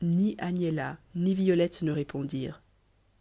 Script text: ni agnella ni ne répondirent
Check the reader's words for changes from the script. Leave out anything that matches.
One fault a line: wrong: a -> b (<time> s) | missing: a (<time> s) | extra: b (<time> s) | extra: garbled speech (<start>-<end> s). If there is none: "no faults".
extra: violette (1.3 s)